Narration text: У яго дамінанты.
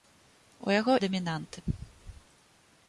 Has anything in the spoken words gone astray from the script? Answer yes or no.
no